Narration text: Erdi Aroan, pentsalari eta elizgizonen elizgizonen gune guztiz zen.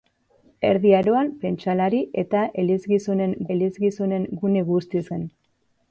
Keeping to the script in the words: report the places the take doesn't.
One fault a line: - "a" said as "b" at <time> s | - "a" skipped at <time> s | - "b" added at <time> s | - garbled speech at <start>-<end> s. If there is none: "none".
none